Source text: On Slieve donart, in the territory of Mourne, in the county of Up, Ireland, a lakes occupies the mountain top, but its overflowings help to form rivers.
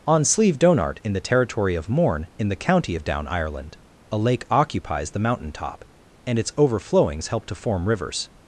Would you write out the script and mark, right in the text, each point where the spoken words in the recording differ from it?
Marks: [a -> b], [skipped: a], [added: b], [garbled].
On Slieve donart, in the territory of Mourne, in the county of [Up, -> Down] Ireland, a [lakes -> lake] occupies the mountain top, [but -> and] its overflowings help to form rivers.